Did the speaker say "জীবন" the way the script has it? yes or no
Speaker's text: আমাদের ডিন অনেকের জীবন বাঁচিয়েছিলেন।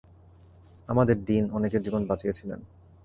yes